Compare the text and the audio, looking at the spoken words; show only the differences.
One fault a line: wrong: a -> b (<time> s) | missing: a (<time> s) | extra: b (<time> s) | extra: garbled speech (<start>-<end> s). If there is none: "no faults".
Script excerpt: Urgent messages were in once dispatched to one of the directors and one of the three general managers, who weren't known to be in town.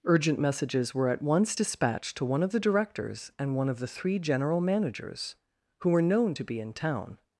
wrong: in -> at (1.1 s)
wrong: weren't -> were (5.9 s)